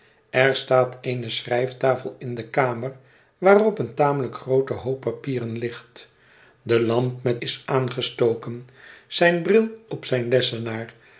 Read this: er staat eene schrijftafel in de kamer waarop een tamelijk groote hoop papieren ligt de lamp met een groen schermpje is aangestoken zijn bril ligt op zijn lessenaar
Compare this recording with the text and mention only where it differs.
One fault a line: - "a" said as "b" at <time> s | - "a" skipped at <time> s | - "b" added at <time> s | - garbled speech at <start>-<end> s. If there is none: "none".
- "een groen schermpje" skipped at 7.4 s
- "ligt" skipped at 9.7 s